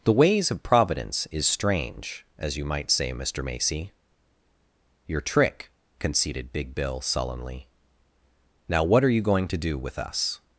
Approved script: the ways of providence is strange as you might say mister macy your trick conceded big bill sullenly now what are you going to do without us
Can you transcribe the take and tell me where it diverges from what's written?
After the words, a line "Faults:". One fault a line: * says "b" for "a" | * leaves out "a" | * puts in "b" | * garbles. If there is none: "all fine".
the ways of providence is strange as you might say mister macy your trick conceded big bill sullenly now what are you going to do with us
Faults:
* says "with" for "without"